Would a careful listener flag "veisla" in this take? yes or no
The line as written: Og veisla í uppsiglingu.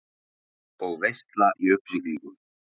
no